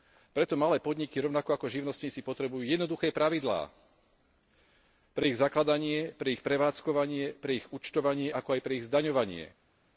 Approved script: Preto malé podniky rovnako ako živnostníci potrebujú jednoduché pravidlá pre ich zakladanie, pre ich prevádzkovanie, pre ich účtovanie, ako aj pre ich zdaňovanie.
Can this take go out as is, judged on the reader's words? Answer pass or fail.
pass